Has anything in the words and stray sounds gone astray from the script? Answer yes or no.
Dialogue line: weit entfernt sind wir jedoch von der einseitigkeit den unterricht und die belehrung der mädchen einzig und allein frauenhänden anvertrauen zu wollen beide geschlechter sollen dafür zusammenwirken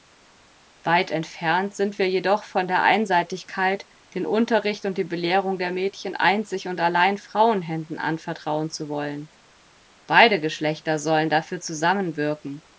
no